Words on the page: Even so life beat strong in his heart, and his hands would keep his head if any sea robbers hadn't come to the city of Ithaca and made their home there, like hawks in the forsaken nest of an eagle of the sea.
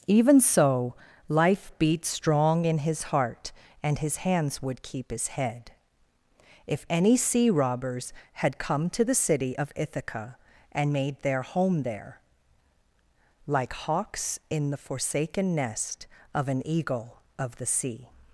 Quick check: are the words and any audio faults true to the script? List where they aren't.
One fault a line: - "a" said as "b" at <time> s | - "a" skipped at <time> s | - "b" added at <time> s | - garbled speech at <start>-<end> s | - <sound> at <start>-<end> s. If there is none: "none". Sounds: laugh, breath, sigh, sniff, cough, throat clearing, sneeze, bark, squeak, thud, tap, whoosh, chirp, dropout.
- "hadn't" said as "had" at 8.3 s